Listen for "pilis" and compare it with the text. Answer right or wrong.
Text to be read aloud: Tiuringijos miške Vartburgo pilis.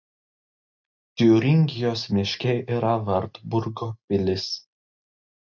right